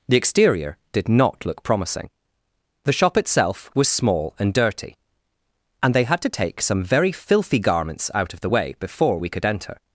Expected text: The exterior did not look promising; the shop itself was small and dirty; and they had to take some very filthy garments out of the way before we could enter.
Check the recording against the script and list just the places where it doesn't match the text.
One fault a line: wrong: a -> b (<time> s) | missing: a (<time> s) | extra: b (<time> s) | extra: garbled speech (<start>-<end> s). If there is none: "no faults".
no faults